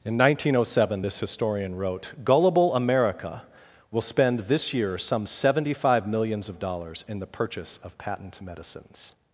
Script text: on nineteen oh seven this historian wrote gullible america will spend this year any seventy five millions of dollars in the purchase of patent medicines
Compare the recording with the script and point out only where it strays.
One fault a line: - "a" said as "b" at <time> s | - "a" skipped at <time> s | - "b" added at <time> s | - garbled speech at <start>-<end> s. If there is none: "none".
- "on" said as "in" at 0.0 s
- "any" said as "some" at 5.0 s